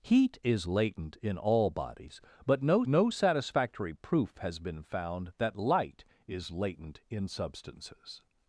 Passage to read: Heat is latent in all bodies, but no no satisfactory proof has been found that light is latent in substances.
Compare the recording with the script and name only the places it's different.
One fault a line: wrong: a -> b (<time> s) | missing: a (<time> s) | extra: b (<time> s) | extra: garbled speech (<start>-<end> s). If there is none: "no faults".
no faults